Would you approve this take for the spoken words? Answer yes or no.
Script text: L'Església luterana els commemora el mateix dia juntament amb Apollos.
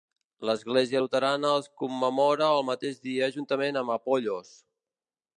yes